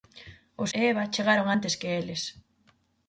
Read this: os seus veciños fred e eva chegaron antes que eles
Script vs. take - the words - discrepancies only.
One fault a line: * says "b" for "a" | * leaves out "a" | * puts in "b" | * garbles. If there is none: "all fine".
* leaves out "seus veciños fred"